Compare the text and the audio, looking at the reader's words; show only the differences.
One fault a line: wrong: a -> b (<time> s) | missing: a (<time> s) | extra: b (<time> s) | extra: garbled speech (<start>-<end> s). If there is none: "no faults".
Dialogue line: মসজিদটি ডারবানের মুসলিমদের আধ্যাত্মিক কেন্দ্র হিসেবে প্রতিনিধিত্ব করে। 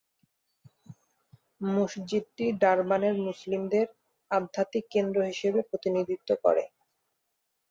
no faults